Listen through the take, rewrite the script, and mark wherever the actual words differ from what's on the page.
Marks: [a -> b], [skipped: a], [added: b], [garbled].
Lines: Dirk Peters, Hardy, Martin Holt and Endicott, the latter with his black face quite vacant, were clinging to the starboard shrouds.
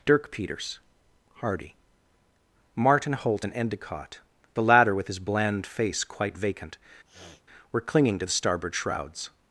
Dirk Peters, Hardy, Martin Holt and Endicott, the latter with his [black -> bland] face quite vacant, were clinging to the starboard shrouds.